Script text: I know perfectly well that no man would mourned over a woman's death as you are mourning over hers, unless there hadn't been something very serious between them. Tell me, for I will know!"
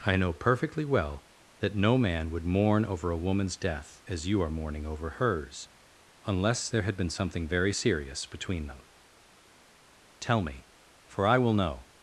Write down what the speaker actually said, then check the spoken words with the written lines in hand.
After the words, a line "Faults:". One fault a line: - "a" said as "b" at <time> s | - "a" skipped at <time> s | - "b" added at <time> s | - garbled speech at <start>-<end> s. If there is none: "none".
I know perfectly well that no man would mourn over a woman's death as you are mourning over hers, unless there had been something very serious between them. Tell me, for I will know!"
Faults:
- "mourned" said as "mourn" at 2.4 s
- "hadn't" said as "had" at 6.8 s